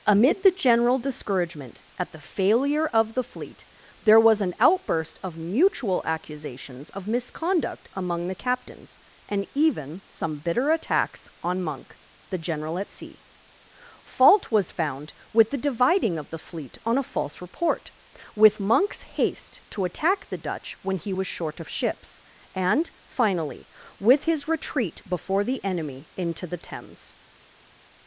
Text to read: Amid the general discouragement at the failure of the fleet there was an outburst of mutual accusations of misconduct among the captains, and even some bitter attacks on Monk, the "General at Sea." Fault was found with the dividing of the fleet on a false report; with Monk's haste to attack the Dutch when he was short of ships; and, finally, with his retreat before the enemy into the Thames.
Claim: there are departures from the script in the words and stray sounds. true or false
false